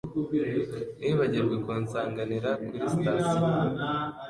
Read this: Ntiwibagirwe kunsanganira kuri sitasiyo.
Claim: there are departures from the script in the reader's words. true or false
false